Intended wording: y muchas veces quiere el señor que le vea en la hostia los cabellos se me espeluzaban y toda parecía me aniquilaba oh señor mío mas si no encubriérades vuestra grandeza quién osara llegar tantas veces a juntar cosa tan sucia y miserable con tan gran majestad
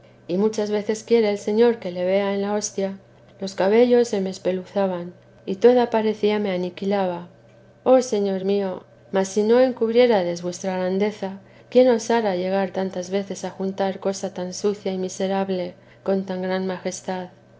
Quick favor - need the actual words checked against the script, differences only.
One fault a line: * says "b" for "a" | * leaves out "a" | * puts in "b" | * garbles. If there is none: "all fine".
all fine